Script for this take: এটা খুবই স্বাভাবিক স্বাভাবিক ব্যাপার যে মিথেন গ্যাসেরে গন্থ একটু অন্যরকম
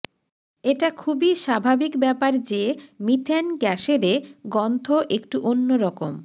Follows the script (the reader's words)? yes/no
no